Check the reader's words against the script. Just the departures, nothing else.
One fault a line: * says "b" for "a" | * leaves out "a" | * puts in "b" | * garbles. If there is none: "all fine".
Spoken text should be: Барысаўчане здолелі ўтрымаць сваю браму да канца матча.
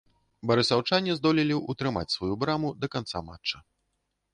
all fine